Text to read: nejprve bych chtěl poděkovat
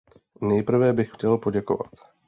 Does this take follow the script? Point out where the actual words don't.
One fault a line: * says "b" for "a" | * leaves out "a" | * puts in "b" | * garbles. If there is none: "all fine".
all fine